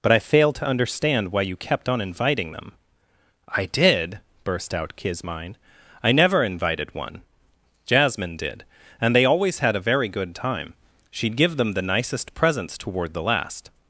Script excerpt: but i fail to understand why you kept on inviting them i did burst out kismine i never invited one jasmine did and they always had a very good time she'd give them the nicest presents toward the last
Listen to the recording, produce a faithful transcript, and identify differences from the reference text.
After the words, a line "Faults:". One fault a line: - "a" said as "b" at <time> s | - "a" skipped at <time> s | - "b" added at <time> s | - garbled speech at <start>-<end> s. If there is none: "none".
but i fail to understand why you kept on inviting them i did burst out kismine i never invited one jasmine did and they always had a very good time she'd give them the nicest presents toward the last
Faults:
none